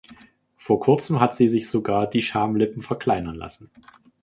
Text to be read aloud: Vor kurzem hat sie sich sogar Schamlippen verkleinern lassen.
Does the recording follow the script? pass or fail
fail